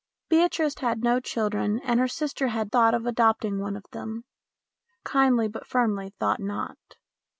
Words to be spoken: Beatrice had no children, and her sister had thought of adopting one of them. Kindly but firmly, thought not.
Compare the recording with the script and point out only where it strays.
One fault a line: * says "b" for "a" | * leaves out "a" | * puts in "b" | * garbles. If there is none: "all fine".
all fine